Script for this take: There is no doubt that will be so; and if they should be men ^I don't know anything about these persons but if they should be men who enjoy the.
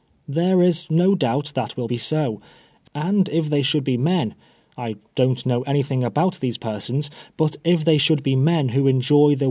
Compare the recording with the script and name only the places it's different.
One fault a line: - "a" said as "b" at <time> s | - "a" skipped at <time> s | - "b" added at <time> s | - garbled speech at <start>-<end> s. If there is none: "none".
none